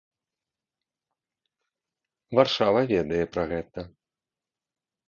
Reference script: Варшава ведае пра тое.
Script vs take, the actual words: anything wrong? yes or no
yes